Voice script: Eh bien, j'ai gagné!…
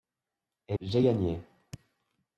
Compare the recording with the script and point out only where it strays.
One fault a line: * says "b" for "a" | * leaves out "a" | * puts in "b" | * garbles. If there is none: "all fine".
* leaves out "bien"